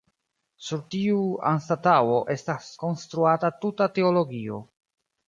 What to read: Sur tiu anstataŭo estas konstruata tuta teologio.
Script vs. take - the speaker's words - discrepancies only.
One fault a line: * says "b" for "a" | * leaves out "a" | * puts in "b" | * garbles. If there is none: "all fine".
all fine